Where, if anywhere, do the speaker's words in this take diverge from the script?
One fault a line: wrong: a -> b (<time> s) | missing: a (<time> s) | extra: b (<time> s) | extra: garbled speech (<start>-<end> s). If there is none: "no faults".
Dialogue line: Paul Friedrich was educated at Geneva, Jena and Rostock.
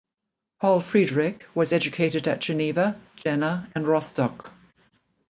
no faults